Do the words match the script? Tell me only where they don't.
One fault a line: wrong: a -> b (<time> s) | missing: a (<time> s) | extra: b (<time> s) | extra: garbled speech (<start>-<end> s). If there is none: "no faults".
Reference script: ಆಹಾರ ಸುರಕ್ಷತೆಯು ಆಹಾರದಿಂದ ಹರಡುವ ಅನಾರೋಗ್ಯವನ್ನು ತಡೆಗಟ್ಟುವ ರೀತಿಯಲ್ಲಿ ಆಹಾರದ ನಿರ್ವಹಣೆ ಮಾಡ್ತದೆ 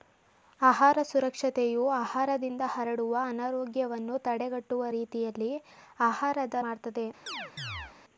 missing: ನಿರ್ವಹಣೆ (6.6 s)